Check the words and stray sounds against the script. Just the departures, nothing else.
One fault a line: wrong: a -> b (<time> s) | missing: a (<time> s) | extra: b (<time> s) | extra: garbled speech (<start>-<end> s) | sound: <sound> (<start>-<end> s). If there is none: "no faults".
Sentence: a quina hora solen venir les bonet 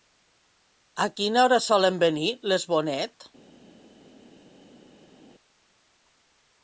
no faults